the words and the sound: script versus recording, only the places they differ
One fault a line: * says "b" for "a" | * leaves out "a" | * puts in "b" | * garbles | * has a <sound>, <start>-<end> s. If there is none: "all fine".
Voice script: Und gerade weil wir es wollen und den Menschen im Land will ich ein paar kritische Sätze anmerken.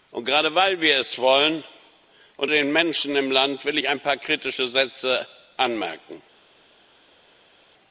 all fine